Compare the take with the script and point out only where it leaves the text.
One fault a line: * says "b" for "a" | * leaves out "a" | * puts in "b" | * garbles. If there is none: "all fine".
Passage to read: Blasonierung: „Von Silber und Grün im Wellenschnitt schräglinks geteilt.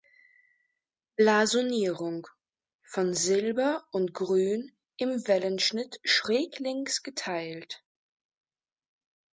all fine